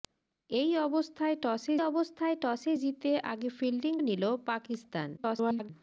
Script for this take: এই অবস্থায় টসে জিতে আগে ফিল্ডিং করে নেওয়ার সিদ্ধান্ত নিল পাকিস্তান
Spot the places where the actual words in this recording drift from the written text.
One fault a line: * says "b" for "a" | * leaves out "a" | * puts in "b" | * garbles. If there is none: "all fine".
* puts in "অবস্থায় টসে"
* leaves out "করে নেওয়ার সিদ্ধান্ত"
* garbles